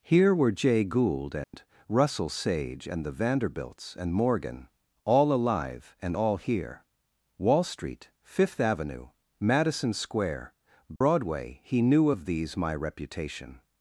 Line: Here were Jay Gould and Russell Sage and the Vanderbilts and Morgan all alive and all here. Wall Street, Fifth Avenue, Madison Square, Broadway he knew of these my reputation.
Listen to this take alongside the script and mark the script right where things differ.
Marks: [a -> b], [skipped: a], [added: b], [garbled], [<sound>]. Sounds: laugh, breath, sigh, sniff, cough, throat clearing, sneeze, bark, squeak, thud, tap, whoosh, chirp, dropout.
Here were Jay Gould and [dropout] Russell Sage and the Vanderbilts and Morgan all alive and all here. Wall Street, Fifth Avenue, Madison Square, Broadway [dropout] he knew of these my reputation.